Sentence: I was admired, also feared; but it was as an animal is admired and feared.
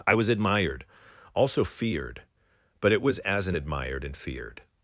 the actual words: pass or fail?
fail